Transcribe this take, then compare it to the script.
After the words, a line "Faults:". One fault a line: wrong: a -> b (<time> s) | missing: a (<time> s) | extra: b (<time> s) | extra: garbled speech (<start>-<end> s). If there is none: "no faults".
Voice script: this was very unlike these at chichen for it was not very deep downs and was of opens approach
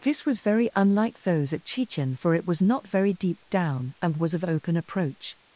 this was very unlike those at chichen for it was not very deep down and was of open approach
Faults:
wrong: these -> those (1.2 s)
wrong: downs -> down (3.5 s)
wrong: opens -> open (4.4 s)